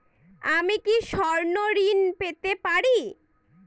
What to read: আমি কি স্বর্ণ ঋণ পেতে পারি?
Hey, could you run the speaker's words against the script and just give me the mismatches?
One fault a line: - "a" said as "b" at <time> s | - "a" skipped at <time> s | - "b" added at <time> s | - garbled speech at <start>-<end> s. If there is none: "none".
none